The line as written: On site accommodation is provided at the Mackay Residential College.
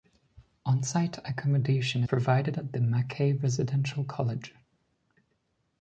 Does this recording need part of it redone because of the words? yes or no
yes